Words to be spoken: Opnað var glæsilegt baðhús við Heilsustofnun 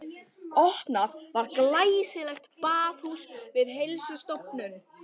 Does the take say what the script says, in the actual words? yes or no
yes